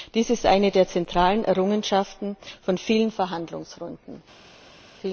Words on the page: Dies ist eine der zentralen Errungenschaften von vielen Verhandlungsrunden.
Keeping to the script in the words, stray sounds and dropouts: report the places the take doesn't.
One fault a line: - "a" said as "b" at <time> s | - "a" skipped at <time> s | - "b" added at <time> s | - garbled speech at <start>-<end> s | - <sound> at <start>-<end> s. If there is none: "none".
none